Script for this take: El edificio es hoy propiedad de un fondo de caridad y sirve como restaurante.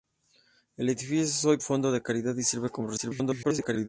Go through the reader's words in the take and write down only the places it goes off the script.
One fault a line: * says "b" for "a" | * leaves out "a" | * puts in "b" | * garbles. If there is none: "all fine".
* leaves out "propiedad de un"
* garbles